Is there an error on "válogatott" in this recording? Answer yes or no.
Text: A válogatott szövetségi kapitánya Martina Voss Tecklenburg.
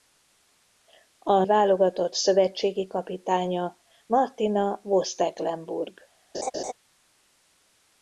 no